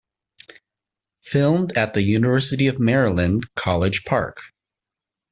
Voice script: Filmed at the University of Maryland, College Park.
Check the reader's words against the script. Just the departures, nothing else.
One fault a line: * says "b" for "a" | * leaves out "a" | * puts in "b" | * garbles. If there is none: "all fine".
all fine